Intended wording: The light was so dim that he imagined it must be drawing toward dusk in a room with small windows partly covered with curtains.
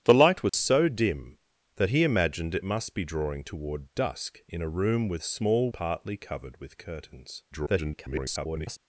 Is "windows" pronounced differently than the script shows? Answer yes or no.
yes